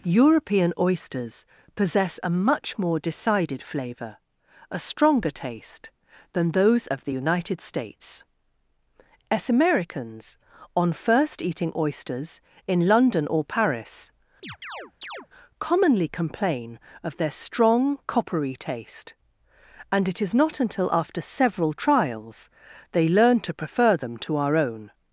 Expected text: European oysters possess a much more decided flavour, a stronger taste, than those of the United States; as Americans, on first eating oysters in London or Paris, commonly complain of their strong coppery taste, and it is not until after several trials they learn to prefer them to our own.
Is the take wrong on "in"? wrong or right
right